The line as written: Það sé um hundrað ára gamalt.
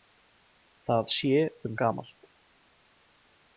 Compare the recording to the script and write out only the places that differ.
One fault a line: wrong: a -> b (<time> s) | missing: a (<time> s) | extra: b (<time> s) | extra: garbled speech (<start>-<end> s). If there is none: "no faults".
missing: hundrað ára (1.8 s)